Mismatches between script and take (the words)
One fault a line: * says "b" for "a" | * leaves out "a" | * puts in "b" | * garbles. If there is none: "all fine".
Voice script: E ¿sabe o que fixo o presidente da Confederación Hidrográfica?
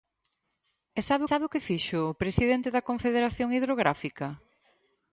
* puts in "sabe"